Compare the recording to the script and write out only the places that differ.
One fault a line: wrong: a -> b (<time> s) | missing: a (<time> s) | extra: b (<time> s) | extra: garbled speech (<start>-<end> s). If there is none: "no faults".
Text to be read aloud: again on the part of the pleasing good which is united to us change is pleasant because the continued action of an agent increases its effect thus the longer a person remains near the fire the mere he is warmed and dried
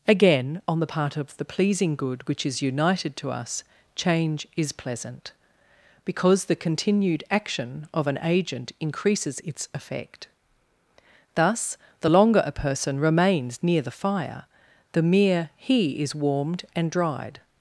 no faults